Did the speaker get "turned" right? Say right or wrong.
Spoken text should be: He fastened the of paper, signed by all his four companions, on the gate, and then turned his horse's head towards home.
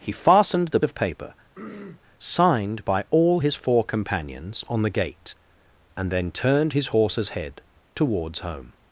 right